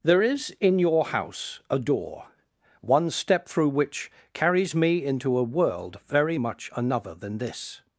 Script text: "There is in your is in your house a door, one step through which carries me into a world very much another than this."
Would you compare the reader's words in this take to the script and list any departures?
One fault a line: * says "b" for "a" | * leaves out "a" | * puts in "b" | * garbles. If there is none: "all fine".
* leaves out "is in your"